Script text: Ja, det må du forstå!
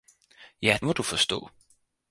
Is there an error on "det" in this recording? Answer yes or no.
yes